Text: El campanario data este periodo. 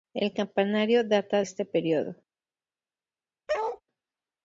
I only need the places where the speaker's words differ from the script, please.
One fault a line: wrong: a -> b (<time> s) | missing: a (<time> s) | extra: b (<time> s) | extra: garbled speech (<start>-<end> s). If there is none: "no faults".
no faults